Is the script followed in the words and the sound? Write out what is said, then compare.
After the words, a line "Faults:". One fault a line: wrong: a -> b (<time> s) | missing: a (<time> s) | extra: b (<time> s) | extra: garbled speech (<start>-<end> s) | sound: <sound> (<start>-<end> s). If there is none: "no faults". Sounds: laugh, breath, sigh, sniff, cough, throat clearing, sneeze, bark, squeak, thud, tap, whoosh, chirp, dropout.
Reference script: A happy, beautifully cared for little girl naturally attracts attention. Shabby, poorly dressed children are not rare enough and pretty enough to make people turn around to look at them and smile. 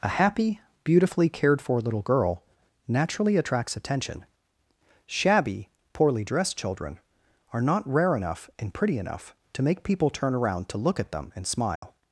A happy, beautifully cared for little girl naturally attracts attention. Shabby, poorly dressed children are not rare enough and pretty enough to make people turn around to look at them and smile.
Faults:
sound: dropout (11.8-11.8 s)